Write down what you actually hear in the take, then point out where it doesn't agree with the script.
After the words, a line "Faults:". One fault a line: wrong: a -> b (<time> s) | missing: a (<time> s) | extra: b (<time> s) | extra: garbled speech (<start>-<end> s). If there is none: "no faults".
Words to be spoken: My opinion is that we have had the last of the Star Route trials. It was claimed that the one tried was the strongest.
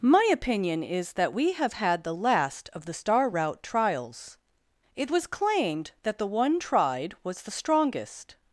My opinion is that we have had the last of the Star Route trials. It was claimed that the one tried was the strongest.
Faults:
no faults